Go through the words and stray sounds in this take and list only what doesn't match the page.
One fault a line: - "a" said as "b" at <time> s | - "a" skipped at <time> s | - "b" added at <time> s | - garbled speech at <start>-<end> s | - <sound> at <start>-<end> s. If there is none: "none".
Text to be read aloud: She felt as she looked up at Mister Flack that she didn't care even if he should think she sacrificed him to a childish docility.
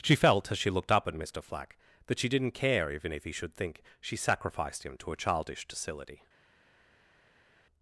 none